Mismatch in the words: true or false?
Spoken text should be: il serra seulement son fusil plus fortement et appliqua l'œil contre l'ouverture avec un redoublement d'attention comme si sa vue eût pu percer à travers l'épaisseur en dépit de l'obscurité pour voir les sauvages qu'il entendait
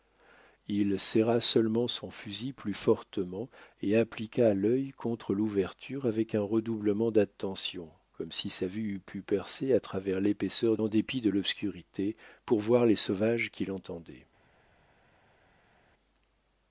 false